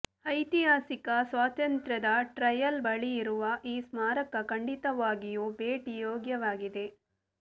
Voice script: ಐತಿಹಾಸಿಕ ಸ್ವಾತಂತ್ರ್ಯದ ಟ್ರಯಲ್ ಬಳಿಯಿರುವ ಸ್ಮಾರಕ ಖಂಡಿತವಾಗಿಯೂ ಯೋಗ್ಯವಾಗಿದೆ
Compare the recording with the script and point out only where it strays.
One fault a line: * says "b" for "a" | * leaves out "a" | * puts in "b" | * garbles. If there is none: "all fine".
* puts in "ಈ"
* puts in "ಭೇಟಿ"